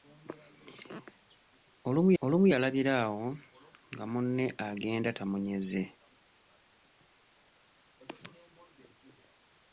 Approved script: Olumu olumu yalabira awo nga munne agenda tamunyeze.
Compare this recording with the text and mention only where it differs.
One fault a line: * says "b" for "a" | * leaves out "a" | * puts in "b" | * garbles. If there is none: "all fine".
all fine